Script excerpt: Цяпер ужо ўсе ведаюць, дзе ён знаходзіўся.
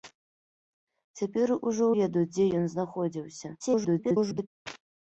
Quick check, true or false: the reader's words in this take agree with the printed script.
false